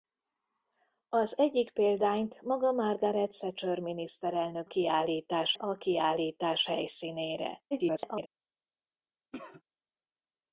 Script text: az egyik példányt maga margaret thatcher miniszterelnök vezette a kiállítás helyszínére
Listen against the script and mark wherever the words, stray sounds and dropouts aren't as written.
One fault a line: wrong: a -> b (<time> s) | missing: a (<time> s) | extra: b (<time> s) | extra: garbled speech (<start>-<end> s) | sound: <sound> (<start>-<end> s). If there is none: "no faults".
wrong: vezette -> kiállítás (4.6 s)
extra: garbled speech (7.7-8.3 s)
sound: cough (9.3-9.6 s)